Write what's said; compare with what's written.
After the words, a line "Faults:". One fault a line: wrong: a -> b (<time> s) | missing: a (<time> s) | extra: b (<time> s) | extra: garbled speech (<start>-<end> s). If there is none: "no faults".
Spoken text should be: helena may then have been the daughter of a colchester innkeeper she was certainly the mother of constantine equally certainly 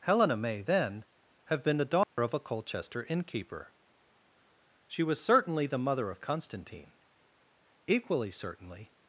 helena may then have been the daughter of a colchester innkeeper she was certainly the mother of constantine equally certainly
Faults:
no faults